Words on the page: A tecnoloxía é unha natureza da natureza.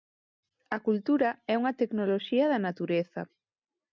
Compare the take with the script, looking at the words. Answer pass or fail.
fail